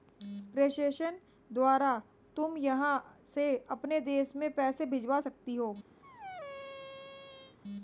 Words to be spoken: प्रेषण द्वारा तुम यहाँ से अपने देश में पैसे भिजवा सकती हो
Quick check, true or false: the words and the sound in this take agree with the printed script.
false